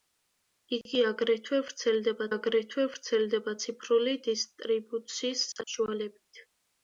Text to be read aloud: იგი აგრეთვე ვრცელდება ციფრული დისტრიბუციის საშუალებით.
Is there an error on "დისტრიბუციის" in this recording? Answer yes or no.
no